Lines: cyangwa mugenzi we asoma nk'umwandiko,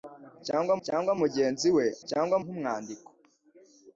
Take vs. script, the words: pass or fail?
fail